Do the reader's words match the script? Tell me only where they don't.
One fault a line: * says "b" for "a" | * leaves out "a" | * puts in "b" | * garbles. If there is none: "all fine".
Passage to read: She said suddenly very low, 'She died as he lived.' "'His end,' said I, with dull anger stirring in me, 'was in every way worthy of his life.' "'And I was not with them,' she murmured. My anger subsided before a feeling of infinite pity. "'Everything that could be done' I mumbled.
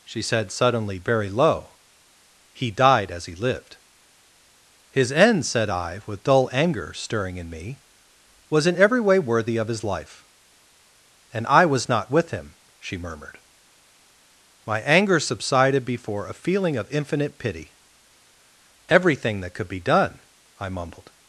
* says "He" for "She"
* says "him" for "them"